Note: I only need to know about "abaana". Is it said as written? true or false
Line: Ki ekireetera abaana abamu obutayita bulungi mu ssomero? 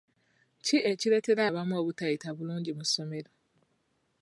false